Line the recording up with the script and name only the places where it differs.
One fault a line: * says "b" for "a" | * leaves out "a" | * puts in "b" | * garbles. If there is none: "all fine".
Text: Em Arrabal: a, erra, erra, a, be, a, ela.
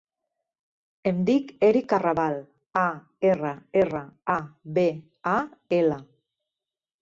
* puts in "dic Eric"